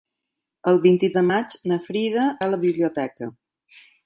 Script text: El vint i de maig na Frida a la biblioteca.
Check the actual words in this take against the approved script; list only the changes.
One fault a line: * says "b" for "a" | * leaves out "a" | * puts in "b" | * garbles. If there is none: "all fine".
all fine